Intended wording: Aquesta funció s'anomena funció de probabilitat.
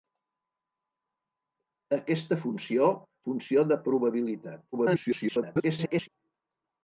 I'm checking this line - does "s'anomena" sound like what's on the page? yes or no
no